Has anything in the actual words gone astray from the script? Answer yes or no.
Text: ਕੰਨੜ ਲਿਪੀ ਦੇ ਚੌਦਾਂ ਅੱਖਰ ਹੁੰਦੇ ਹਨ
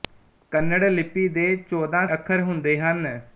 no